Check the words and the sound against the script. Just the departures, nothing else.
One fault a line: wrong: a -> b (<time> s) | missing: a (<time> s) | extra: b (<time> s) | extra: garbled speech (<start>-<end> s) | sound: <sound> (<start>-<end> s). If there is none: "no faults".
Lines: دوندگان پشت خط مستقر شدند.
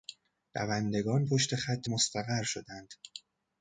no faults